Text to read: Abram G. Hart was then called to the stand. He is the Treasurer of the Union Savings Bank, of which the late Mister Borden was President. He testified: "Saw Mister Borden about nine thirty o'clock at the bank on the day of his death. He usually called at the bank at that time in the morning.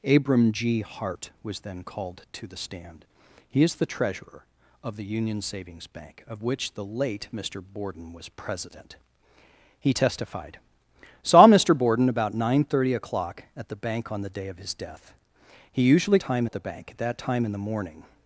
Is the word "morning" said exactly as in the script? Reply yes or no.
yes